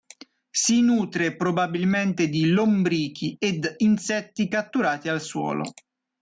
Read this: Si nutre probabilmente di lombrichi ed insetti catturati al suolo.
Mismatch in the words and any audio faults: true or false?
false